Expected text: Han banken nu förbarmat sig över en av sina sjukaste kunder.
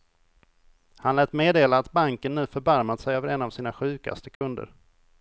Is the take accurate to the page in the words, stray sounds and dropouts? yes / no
no